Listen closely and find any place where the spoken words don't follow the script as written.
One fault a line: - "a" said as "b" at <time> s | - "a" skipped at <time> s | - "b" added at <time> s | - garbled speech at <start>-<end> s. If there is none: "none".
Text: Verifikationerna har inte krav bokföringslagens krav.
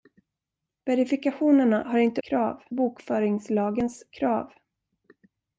none